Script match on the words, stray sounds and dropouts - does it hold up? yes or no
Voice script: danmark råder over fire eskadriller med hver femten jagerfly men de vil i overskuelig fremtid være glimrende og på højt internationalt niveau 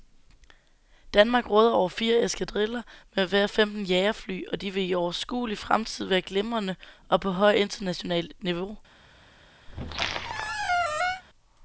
no